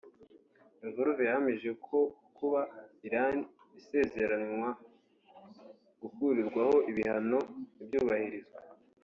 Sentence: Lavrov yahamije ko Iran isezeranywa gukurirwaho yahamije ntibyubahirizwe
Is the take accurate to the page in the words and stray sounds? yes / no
no